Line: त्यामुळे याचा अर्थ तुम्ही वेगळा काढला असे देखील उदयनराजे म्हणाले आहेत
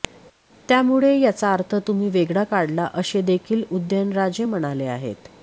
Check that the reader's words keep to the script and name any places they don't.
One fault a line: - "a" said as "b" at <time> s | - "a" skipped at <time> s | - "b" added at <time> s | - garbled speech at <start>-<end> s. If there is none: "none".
none